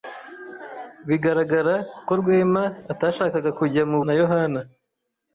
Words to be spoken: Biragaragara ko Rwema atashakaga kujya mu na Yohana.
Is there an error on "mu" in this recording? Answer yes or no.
no